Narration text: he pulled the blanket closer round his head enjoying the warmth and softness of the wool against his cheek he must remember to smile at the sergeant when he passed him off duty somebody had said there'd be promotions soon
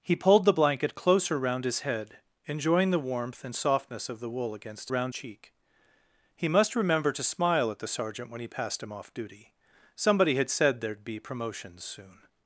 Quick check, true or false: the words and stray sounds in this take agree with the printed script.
false